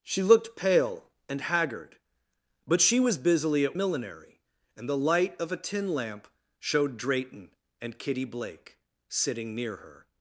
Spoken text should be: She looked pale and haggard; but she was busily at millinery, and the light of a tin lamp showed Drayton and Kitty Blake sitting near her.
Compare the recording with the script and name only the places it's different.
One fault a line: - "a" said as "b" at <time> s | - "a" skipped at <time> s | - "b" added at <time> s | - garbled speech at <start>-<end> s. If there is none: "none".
none